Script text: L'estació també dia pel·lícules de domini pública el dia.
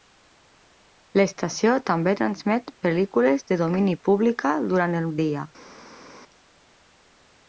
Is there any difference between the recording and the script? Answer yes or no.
yes